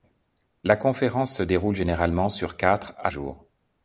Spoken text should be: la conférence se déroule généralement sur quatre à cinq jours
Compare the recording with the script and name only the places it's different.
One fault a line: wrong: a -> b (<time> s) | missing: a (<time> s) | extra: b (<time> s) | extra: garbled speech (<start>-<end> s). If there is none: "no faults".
missing: cinq (3.1 s)